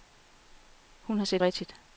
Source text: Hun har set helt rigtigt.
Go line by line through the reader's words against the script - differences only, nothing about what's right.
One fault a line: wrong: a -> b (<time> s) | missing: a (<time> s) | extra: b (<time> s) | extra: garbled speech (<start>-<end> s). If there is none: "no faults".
missing: helt (1.4 s)